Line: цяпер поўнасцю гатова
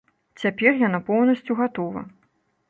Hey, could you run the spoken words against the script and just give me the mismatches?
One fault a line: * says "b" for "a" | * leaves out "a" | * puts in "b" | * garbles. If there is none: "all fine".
* puts in "яна"